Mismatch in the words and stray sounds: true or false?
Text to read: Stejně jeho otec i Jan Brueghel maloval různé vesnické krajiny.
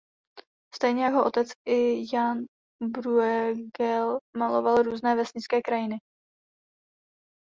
false